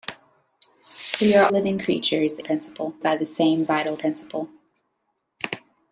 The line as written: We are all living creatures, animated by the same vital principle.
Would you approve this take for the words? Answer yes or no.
no